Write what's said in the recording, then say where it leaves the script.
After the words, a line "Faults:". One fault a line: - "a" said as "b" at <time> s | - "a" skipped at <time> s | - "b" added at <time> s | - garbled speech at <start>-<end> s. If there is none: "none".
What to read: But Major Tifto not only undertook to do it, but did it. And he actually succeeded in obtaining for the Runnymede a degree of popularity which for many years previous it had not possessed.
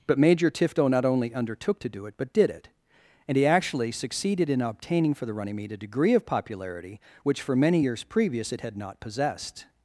But Major Tifto not only undertook to do it, but did it. And he actually succeeded in obtaining for the Runnymede a degree of popularity which for many years previous it had not possessed.
Faults:
none